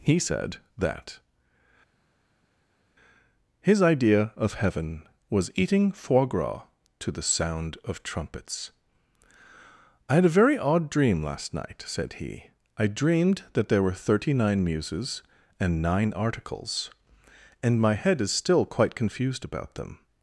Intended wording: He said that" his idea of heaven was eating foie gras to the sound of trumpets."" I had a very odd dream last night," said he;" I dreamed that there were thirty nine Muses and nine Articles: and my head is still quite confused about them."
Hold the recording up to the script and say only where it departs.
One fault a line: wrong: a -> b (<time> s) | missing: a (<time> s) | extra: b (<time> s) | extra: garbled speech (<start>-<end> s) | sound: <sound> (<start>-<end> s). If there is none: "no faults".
no faults